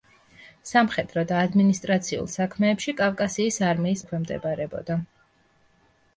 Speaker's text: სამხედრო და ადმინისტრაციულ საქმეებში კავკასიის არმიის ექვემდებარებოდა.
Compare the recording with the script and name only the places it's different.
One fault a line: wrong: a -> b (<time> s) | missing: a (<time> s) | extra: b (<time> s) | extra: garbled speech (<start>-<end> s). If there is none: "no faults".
no faults